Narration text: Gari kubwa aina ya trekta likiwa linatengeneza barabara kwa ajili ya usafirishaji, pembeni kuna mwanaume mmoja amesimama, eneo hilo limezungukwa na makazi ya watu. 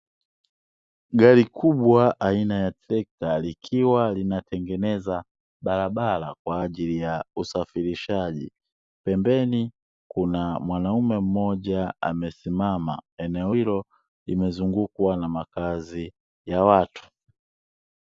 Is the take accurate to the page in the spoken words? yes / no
yes